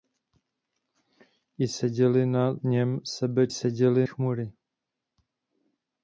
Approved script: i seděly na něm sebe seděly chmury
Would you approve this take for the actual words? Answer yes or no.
yes